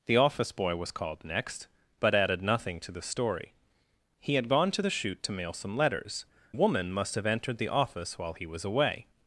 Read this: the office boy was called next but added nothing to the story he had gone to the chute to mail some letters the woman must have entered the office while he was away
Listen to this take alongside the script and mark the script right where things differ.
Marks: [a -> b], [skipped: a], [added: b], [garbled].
the office boy was called next but added nothing to the story he had gone to the chute to mail some letters [skipped: the] woman must have entered the office while he was away